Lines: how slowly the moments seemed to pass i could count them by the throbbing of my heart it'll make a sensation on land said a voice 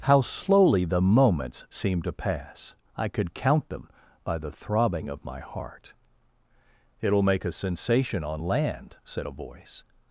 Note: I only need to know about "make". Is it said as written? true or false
true